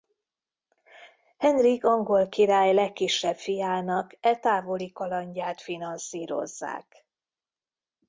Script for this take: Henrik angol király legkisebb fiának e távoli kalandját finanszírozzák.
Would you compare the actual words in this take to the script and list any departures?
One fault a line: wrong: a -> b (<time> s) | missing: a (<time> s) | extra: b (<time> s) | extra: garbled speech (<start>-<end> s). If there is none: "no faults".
no faults